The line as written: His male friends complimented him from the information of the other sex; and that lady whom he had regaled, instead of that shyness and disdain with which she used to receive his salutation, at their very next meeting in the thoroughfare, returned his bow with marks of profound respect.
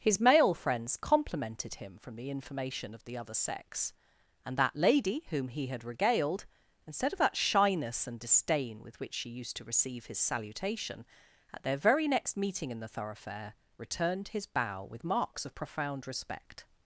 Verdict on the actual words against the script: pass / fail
pass